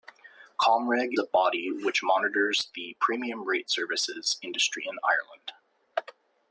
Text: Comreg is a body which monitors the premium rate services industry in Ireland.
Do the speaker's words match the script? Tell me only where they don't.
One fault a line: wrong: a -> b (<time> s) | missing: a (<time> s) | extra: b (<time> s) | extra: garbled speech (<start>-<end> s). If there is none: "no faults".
missing: is (1.1 s)